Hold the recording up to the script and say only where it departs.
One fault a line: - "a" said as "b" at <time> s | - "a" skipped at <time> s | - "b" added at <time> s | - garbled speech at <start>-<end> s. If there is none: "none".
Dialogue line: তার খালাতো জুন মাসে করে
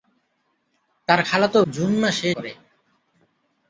none